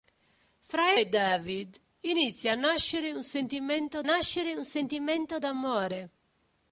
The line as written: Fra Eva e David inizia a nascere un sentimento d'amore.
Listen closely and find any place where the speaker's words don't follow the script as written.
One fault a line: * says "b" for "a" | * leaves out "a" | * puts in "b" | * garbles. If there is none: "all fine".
* leaves out "Eva"
* puts in "nascere un sentimento"